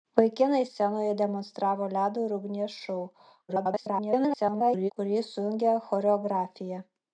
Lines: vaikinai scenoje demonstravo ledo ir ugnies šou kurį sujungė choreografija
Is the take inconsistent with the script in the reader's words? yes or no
yes